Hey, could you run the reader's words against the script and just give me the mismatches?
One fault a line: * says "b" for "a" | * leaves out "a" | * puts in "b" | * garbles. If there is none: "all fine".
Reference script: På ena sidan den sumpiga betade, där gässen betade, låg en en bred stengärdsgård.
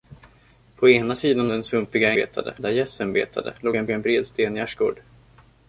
all fine